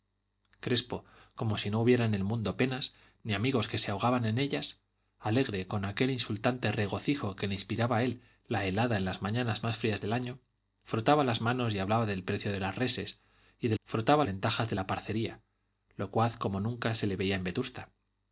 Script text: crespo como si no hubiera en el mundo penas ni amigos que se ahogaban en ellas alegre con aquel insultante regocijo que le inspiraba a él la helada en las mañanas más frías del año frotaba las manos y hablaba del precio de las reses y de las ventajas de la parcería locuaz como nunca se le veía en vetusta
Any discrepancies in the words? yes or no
yes